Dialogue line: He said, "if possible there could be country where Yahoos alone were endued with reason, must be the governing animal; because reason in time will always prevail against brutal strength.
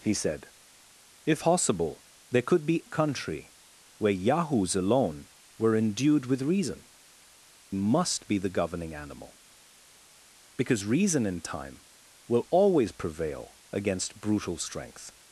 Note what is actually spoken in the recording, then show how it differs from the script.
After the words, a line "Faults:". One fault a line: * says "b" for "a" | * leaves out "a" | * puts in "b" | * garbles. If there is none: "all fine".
He said, "if possible there could be country where Yahoos alone were endued with reason, must be the governing animal; because reason in time will always prevail against brutal strength.
Faults:
all fine